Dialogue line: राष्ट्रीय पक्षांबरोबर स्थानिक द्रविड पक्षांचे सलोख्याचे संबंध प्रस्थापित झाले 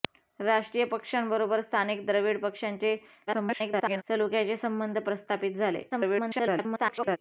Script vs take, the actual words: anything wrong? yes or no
yes